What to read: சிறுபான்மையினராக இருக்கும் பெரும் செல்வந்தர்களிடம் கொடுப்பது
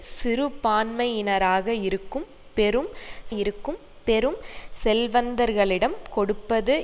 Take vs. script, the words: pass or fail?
fail